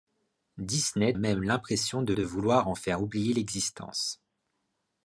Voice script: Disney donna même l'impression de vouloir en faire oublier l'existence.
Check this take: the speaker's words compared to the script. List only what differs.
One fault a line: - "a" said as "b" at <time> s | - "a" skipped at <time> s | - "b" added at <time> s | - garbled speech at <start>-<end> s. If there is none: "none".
- "donna" skipped at 1.1 s
- "de" added at 2.1 s